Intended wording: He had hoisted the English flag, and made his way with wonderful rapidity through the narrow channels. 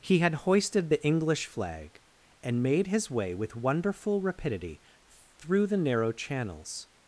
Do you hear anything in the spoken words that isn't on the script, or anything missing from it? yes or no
no